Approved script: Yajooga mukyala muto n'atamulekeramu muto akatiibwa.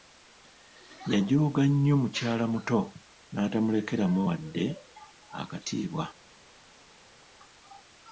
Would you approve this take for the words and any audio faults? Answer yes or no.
no